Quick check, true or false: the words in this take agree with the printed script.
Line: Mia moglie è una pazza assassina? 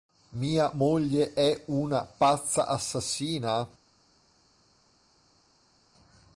true